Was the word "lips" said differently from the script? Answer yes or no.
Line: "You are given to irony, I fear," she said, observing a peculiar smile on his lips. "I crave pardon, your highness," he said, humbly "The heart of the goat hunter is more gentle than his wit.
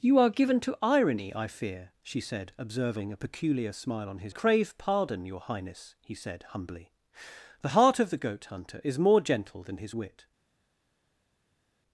yes